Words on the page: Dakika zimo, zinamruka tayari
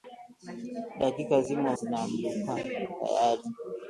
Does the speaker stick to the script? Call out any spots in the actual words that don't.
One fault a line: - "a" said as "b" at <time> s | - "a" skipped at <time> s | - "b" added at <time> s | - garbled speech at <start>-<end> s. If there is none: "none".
none